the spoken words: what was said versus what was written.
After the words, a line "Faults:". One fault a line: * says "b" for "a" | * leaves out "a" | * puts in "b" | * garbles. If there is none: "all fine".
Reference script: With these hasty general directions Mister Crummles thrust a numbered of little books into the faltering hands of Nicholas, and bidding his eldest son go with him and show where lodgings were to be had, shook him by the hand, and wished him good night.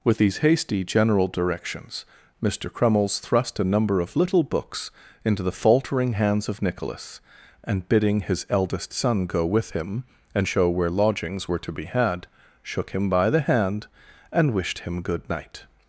With these hasty general directions Mister Crummles thrust a number of little books into the faltering hands of Nicholas, and bidding his eldest son go with him and show where lodgings were to be had, shook him by the hand, and wished him good night.
Faults:
* says "number" for "numbered"